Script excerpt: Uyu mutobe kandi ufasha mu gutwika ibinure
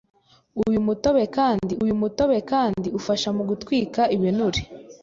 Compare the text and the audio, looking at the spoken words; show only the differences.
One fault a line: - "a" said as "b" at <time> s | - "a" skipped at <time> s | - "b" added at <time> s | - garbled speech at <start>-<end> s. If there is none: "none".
- "uyu mutobe kandi" added at 1.8 s